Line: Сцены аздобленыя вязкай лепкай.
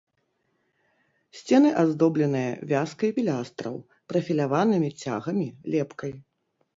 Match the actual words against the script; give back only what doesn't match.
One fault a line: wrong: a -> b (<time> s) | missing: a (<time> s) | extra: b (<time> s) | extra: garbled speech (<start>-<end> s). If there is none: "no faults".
extra: пілястраў прафіляванымі цягамі (3.2 s)